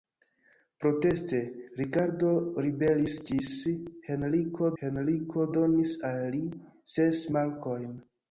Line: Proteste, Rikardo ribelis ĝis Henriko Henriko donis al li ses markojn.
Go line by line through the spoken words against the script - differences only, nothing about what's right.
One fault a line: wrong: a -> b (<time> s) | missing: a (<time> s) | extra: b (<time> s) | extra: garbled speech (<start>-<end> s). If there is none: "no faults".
no faults